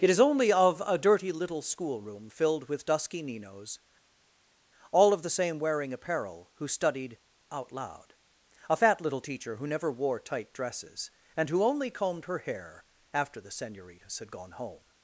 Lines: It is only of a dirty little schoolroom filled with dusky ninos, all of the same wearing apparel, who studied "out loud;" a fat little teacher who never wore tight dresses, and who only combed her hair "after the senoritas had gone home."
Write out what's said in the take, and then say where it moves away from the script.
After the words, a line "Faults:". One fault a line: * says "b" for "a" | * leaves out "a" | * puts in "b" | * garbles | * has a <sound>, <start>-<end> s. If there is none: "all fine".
It is only of a dirty little schoolroom filled with dusky ninos, all of the same wearing apparel, who studied "out loud;" a fat little teacher who never wore tight dresses, and who only combed her hair "after the senoritas had gone home."
Faults:
all fine